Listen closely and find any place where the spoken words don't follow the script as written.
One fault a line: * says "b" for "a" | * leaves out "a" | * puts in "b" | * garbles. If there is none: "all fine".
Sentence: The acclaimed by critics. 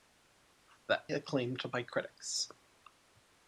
all fine